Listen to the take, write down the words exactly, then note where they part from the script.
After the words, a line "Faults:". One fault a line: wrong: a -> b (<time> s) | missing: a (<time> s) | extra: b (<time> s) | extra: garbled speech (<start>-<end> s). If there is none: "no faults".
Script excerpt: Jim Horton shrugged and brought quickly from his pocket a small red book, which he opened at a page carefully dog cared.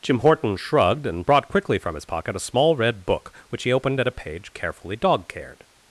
Jim Horton shrugged and brought quickly from his pocket a small red book, which he opened at a page carefully dog cared.
Faults:
no faults